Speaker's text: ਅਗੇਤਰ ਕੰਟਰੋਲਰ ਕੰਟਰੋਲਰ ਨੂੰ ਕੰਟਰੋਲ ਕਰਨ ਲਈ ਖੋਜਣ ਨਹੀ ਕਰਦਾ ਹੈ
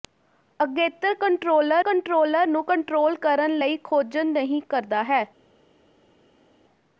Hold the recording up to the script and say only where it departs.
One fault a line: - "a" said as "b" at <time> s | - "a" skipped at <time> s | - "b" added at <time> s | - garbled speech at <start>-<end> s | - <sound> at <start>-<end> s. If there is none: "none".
none